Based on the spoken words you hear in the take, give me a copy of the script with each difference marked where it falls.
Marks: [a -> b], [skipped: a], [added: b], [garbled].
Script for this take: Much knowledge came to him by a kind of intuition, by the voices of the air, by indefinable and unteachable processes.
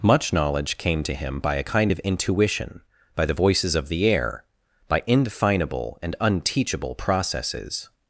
Much knowledge came to him by a kind of intuition, by the voices of the air, by indefinable and unteachable processes.